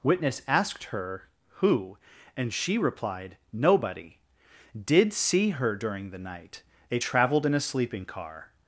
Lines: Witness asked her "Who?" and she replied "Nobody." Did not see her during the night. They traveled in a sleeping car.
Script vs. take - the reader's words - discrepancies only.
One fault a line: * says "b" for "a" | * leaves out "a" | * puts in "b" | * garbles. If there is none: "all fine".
* leaves out "not"